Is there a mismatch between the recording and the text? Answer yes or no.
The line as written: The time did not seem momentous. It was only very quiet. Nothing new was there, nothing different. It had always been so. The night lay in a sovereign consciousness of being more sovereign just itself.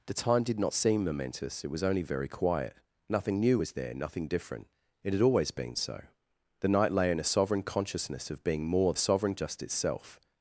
no